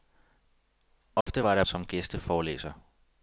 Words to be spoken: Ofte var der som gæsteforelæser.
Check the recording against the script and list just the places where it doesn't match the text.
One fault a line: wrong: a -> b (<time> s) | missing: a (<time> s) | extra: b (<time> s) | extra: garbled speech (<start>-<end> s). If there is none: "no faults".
no faults